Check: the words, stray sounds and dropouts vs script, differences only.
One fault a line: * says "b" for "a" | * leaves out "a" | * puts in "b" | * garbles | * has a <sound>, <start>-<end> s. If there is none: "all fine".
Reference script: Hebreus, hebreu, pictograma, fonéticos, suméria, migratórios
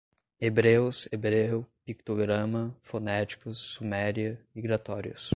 all fine